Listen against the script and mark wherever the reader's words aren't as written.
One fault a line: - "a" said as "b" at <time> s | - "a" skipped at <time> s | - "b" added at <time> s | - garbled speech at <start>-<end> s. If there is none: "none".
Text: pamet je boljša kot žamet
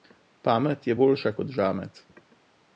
none